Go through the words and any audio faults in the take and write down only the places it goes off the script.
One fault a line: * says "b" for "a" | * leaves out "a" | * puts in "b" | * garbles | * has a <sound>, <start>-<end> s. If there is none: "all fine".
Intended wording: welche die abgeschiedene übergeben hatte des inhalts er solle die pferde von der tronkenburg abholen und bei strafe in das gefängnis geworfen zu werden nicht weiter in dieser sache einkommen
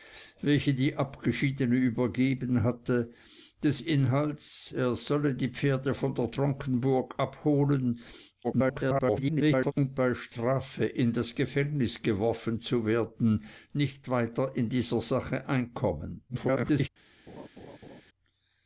* garbles
* garbles
* has a laugh, 17.3-18.0 s